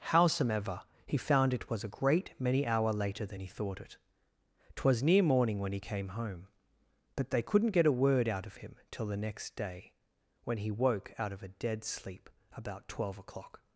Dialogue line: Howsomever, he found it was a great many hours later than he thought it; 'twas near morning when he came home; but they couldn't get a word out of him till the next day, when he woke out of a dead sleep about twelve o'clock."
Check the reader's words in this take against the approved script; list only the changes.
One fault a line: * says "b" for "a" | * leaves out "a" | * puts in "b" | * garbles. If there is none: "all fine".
* says "hour" for "hours"